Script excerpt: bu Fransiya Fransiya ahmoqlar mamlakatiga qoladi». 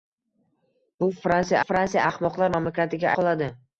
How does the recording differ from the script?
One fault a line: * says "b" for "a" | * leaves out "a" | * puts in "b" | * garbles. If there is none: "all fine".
all fine